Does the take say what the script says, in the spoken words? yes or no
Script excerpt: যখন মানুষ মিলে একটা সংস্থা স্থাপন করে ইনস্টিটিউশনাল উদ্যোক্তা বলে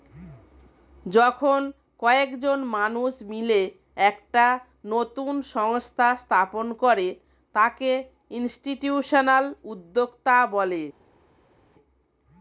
no